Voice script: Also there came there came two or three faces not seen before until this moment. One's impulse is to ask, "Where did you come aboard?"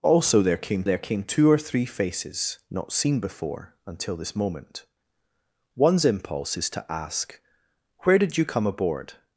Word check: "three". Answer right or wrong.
right